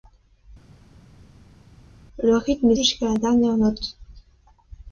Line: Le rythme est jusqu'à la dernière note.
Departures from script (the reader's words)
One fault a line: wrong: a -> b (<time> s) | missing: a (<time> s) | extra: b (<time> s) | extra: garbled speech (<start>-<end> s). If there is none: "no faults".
no faults